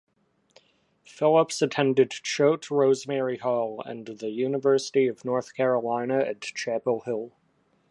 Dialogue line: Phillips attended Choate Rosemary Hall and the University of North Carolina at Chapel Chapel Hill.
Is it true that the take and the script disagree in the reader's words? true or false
true